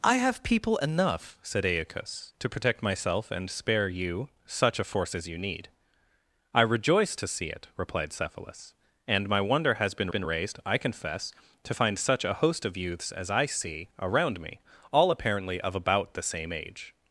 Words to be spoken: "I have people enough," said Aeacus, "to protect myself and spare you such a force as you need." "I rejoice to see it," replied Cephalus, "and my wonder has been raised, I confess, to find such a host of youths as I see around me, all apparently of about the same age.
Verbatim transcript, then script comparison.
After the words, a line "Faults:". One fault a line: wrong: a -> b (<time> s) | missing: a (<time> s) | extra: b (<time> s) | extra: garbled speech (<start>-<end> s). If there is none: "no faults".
"I have people enough," said Aeacus, "to protect myself and spare you such a force as you need." "I rejoice to see it," replied Cephalus, "and my wonder has been been raised, I confess, to find such a host of youths as I see around me, all apparently of about the same age.
Faults:
extra: been (10.1 s)